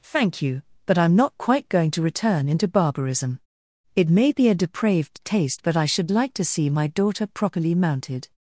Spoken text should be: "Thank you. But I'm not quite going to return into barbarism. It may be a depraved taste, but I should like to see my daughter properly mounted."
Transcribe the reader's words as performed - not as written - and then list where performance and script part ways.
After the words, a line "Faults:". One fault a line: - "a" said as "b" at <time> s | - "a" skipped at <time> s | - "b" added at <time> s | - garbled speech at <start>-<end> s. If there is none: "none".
"Thank you. But I'm not quite going to return into barbarism. It may be a depraved taste, but I should like to see my daughter properly mounted."
Faults:
none